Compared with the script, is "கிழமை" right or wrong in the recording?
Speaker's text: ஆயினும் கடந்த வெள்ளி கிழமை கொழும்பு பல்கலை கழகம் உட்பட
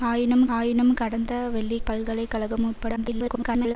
wrong